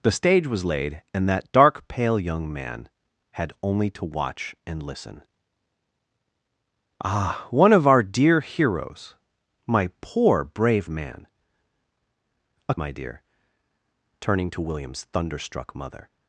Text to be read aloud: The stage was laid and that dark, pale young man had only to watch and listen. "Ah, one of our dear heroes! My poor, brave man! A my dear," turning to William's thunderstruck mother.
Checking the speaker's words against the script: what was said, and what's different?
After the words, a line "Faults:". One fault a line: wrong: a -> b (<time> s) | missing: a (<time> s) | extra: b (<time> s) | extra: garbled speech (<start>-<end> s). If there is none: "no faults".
The stage was laid and that dark, pale young man had only to watch and listen. "Ah, one of our dear heroes! My poor, brave man! A my dear," turning to William's thunderstruck mother.
Faults:
no faults